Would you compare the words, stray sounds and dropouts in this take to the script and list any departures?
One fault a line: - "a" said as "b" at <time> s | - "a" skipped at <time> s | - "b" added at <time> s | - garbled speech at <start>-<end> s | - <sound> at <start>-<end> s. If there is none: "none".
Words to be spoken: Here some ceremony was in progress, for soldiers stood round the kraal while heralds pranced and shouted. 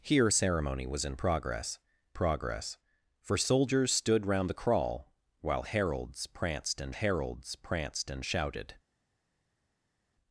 - "some" skipped at 0.3 s
- "progress" added at 2.1 s
- "heralds pranced and" added at 6.9 s